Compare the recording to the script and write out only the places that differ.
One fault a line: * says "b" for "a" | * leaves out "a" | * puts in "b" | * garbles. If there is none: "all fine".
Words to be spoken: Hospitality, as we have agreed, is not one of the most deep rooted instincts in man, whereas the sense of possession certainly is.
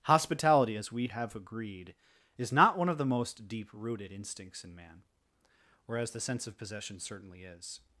all fine